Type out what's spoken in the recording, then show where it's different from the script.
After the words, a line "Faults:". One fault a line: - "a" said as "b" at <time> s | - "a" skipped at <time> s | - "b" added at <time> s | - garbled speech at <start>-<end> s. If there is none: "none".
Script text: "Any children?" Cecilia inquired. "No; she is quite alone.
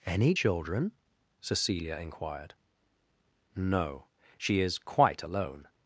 "Any children?" Cecilia inquired. "No; she is quite alone.
Faults:
none